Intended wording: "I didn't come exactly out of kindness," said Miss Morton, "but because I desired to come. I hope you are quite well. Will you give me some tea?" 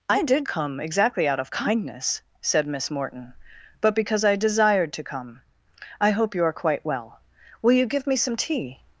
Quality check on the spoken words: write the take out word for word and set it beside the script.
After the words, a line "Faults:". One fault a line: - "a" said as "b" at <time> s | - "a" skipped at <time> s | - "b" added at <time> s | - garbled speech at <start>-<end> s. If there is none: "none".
"I did come exactly out of kindness," said Miss Morton, "but because I desired to come. I hope you are quite well. Will you give me some tea?"
Faults:
- "didn't" said as "did" at 0.2 s